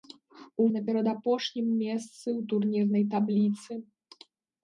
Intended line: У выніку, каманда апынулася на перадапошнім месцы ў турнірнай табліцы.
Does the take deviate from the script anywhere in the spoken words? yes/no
yes